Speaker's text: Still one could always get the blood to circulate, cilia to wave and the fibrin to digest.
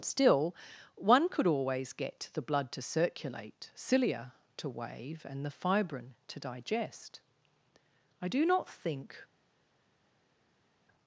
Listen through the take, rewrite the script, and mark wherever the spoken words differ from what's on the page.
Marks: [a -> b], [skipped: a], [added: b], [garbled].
Still one could always get the blood to circulate, cilia to wave and the fibrin to digest. [added: I do not think]